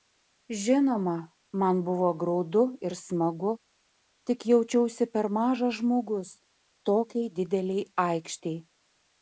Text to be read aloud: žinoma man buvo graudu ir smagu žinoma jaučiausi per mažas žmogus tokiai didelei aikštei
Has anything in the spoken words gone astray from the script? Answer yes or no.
yes